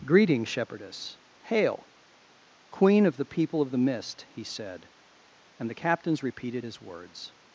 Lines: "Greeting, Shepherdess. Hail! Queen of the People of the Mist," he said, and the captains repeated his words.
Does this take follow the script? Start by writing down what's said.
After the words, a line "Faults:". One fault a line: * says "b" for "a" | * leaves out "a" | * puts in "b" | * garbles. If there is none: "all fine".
"Greeting, Shepherdess. Hail! Queen of the People of the Mist," he said, and the captains repeated his words.
Faults:
all fine